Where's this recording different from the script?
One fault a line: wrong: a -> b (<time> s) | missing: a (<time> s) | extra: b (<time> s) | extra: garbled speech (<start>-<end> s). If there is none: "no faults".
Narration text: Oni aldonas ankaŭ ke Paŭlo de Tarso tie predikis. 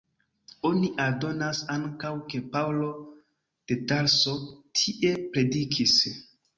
no faults